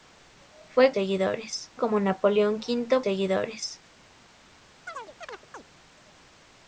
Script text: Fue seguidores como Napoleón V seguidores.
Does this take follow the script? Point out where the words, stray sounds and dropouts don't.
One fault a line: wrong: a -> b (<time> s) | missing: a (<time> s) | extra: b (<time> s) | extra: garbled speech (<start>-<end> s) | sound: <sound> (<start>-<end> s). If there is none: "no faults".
sound: chirp (4.9-5.6 s)